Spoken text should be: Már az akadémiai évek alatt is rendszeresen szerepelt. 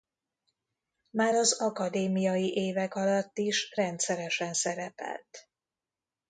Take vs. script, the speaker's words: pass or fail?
pass